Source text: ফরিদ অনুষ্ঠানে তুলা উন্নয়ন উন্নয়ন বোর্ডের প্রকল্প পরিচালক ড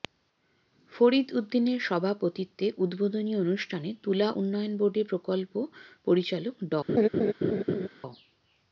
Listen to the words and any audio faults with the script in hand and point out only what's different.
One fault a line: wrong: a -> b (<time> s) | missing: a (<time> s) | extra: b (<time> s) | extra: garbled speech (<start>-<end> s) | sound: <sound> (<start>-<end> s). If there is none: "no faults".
extra: উদ্দিনের সভাপতিত্বে উদ্বোধনী (1.4 s)
missing: উন্নয়ন (4.7 s)
sound: laugh (6.9-7.9 s)